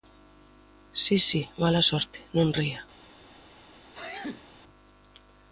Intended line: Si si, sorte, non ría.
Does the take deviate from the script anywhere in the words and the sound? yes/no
yes